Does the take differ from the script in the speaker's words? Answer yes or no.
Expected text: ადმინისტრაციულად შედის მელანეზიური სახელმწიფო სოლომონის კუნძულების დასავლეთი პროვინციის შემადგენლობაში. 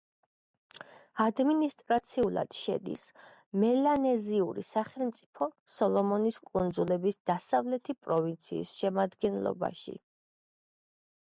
no